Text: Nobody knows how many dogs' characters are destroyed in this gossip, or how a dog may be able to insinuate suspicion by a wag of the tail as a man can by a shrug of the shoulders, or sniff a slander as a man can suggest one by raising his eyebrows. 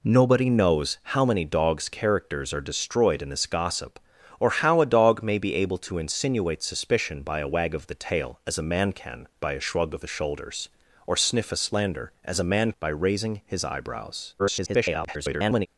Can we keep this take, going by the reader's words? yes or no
no